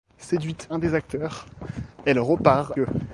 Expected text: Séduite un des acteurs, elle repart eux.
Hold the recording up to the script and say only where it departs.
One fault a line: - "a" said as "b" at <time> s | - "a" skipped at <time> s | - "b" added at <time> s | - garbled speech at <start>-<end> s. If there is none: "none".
none